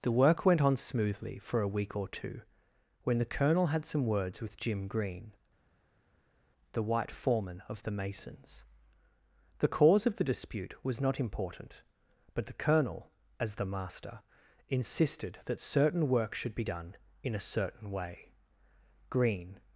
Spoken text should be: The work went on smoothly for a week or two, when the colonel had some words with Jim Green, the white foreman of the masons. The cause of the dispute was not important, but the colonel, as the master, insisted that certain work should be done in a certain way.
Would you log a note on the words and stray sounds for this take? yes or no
yes